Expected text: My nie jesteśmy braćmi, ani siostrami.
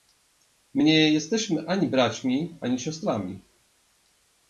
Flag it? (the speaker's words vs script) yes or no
yes